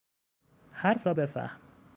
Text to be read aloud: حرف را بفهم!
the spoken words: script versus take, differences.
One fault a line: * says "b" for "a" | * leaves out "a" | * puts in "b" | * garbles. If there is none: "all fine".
all fine